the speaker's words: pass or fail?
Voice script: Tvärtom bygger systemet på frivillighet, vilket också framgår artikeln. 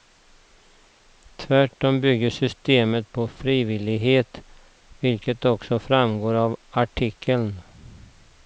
fail